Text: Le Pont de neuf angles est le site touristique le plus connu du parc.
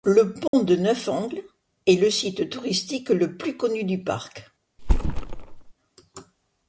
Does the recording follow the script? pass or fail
pass